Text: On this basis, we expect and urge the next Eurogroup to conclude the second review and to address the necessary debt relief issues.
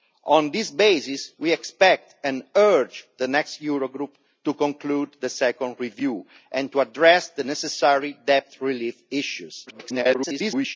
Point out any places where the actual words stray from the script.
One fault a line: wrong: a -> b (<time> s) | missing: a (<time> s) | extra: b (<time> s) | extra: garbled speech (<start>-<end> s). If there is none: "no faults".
extra: garbled speech (9.7-10.8 s)